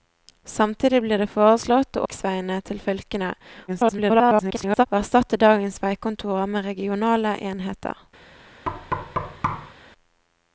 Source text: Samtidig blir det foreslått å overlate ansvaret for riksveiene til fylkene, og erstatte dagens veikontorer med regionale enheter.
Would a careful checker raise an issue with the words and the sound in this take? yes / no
yes